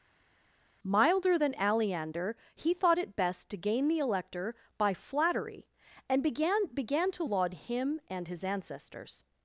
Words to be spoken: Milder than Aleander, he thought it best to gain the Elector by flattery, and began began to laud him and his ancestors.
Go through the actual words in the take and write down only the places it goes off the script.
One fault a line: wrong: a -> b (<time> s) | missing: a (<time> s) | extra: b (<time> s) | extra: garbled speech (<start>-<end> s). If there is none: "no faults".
no faults